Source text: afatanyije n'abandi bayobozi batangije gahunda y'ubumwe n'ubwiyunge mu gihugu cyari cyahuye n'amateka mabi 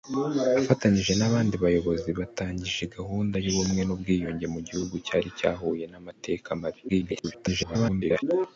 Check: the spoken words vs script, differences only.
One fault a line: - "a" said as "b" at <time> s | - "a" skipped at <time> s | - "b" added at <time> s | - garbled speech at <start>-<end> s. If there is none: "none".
- garbled speech at 6.9-8.2 s